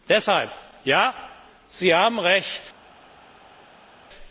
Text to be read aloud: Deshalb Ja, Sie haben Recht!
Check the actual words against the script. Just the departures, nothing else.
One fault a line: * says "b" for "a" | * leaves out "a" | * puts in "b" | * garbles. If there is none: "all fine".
all fine